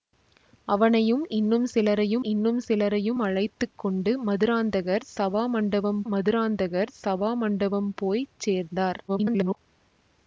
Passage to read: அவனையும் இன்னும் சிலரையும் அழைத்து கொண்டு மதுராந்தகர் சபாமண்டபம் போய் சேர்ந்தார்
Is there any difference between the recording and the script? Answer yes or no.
yes